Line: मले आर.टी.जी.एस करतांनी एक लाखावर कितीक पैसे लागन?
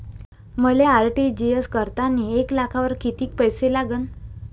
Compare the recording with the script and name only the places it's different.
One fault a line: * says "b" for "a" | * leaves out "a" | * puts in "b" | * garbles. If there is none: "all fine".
all fine